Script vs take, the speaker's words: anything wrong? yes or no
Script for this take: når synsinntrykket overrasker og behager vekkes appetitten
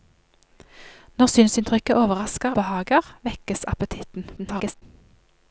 yes